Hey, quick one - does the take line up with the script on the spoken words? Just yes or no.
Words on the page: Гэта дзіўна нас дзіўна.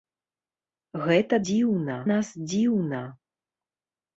yes